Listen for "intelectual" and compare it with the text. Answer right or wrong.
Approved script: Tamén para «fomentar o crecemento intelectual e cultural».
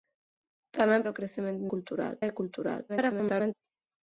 wrong